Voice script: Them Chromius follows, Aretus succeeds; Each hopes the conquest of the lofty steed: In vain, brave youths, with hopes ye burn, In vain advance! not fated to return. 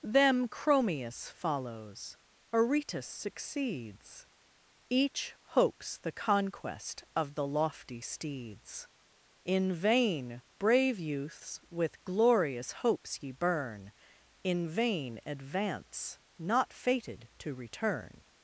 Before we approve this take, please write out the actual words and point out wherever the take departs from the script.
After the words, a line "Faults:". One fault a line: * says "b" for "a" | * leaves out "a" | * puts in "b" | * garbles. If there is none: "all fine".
Them Chromius follows, Aretus succeeds; Each hopes the conquest of the lofty steeds: In vain, brave youths, with glorious hopes ye burn, In vain advance! not fated to return.
Faults:
* says "steeds" for "steed"
* puts in "glorious"